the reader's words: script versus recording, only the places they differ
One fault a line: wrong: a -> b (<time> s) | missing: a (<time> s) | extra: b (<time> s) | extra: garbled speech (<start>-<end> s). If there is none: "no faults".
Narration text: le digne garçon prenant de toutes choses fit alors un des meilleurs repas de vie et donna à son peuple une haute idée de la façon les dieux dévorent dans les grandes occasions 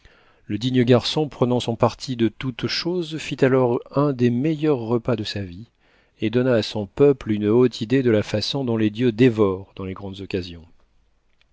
extra: son parti (1.6 s)
extra: sa (5.2 s)
extra: dont (8.6 s)